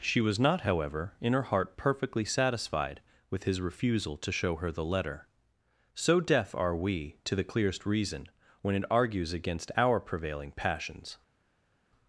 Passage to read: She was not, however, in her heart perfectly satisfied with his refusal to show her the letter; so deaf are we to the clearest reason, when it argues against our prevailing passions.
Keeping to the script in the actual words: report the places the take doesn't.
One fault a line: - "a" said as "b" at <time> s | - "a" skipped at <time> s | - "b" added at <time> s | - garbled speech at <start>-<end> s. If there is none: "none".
none